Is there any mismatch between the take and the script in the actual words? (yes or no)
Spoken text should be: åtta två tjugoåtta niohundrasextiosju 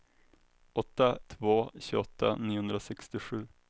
no